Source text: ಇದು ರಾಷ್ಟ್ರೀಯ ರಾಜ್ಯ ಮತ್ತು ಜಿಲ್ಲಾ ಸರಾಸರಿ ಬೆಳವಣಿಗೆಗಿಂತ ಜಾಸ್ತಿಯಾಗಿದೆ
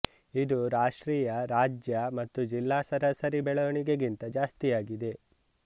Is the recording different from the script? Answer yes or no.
no